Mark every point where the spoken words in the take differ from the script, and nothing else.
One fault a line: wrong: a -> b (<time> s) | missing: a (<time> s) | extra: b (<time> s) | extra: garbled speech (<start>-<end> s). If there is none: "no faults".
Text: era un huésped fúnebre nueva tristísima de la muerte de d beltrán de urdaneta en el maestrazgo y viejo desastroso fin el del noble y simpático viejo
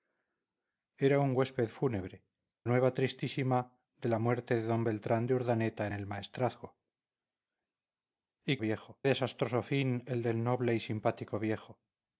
no faults